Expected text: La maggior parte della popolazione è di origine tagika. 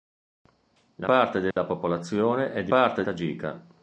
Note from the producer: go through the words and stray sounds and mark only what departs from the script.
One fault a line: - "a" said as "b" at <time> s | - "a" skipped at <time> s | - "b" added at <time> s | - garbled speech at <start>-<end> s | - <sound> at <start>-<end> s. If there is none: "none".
- "maggior" skipped at 1.1 s
- dropout at 1.5-1.6 s
- "origine" said as "parte" at 2.7 s